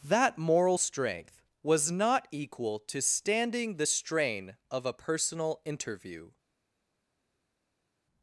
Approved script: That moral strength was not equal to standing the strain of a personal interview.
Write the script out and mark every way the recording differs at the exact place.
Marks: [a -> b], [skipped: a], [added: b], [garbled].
That moral strength was not equal to standing the strain of a personal interview.